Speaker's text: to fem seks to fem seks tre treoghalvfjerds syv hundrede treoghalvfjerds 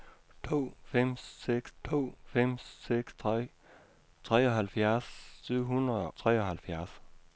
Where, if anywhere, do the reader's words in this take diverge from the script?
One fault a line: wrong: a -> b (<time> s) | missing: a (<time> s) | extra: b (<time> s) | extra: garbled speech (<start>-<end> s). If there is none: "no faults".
no faults